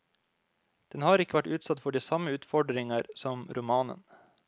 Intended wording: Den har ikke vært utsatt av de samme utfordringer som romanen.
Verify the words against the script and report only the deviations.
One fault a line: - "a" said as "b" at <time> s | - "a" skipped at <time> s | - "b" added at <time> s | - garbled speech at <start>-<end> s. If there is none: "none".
- "av" said as "for" at 1.8 s